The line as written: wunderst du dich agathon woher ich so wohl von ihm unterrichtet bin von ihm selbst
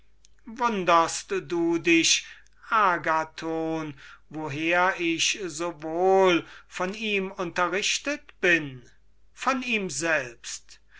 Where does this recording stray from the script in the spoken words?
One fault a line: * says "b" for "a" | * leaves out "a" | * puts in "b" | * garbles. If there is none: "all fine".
all fine